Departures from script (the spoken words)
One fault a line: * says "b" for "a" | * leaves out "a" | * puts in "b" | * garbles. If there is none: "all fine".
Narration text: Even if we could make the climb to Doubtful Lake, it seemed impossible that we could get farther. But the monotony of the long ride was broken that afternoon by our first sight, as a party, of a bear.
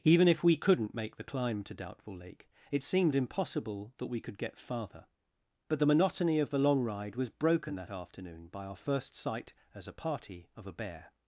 * says "couldn't" for "could"